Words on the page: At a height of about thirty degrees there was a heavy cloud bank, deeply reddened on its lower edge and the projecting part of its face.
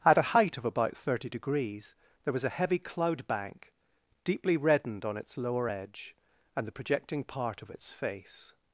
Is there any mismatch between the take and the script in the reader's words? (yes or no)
no